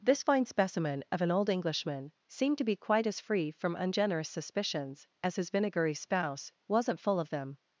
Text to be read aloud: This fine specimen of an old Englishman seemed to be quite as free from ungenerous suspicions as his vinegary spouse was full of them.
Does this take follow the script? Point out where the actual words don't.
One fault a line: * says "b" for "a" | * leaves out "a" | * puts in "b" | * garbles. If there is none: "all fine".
* says "wasn't" for "was"